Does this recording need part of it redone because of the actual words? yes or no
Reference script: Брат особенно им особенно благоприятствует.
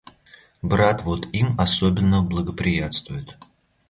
yes